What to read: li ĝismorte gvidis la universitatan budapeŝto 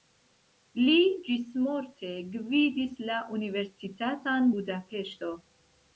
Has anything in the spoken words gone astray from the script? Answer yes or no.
no